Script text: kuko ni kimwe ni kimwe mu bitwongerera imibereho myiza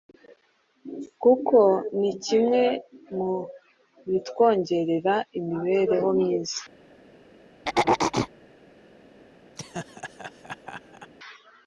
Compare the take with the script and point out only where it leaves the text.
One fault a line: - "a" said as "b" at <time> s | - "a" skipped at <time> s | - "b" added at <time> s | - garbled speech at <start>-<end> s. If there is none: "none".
- "ni kimwe" skipped at 2.6 s